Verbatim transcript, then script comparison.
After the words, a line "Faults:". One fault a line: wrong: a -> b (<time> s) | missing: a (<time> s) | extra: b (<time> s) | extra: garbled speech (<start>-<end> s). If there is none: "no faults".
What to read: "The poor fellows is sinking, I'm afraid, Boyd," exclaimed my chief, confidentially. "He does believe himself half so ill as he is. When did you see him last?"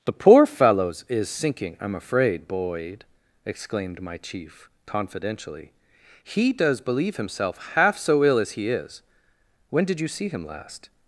"The poor fellows is sinking, I'm afraid, Boyd," exclaimed my chief, confidentially. "He does believe himself half so ill as he is. When did you see him last?"
Faults:
no faults